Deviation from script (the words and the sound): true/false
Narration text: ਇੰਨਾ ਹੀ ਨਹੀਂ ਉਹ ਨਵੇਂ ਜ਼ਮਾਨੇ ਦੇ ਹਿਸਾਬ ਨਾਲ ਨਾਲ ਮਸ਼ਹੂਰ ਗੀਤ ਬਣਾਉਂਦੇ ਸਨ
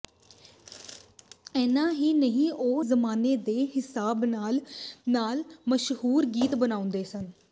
true